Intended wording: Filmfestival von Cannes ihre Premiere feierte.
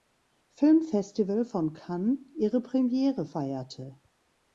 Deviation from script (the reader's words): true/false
false